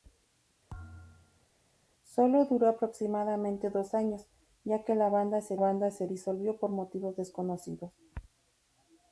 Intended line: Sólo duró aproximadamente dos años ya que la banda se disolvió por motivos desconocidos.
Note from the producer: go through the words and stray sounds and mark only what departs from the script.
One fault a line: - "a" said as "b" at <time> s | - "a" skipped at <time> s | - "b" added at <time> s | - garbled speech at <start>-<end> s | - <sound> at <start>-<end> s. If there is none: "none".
- thud at 0.7-1.5 s
- "banda se" added at 5.6 s